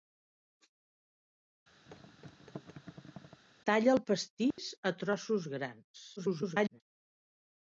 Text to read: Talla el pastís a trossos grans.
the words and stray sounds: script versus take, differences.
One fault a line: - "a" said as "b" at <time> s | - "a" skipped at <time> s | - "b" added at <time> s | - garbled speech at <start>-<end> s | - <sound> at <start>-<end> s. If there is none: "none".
- thud at 1.9-3.4 s
- dropout at 4.5-4.6 s
- garbled speech at 6.2-6.8 s